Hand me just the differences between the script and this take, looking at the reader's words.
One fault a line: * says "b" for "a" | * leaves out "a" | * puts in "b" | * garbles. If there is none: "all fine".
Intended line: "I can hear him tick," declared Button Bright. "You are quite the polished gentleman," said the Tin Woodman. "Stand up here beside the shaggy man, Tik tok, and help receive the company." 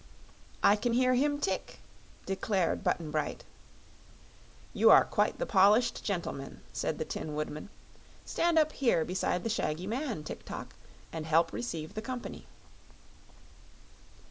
all fine